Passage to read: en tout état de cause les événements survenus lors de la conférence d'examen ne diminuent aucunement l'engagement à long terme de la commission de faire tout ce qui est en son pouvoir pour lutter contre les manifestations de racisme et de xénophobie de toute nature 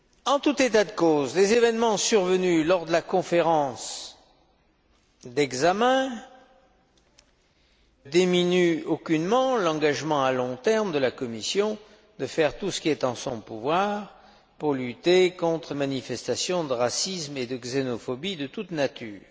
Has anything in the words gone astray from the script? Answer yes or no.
yes